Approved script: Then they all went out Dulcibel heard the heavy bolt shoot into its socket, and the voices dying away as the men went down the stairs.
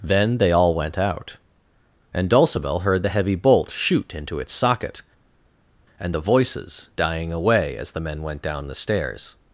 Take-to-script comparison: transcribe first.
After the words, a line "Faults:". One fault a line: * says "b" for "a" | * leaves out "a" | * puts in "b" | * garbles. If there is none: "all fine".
Then they all went out and Dulcibel heard the heavy bolt shoot into its socket, and the voices dying away as the men went down the stairs.
Faults:
* puts in "and"